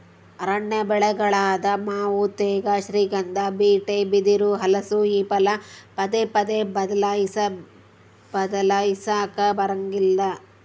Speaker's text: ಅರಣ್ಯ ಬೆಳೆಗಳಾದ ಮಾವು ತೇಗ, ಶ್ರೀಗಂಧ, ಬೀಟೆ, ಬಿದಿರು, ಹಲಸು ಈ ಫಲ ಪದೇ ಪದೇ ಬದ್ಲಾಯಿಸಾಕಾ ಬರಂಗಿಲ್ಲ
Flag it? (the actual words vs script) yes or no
no